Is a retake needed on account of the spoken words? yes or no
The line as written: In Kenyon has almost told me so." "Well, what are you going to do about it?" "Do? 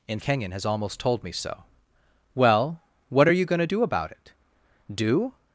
no